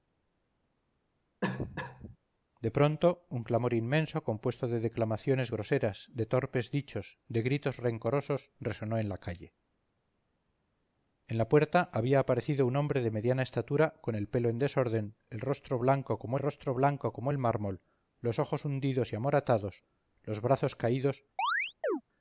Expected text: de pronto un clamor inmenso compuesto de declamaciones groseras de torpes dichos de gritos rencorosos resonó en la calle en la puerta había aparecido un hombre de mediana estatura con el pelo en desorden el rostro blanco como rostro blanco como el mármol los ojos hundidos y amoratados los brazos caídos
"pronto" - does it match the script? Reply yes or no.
yes